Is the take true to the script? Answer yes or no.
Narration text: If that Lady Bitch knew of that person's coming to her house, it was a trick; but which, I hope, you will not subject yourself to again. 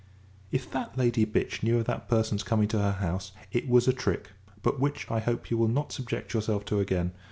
yes